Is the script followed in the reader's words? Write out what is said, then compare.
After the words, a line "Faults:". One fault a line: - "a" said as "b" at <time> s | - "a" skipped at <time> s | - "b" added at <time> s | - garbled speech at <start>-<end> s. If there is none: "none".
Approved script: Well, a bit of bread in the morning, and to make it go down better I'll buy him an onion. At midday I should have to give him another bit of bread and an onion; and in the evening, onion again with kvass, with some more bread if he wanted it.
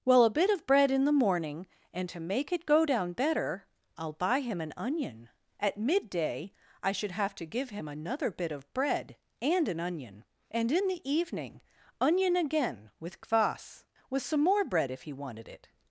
Well, a bit of bread in the morning, and to make it go down better I'll buy him an onion. At midday I should have to give him another bit of bread and an onion; and in the evening, onion again with kvass, with some more bread if he wanted it.
Faults:
none